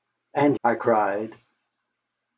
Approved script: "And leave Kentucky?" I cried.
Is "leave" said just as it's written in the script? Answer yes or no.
no